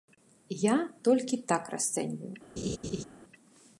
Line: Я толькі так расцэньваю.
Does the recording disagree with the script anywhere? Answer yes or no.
no